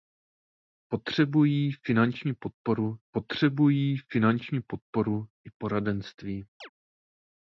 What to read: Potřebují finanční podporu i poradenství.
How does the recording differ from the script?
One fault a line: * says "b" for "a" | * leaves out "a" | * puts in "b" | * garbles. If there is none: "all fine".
* puts in "potřebují finanční podporu"